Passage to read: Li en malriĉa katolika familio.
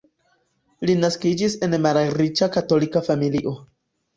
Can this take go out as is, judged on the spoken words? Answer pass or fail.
fail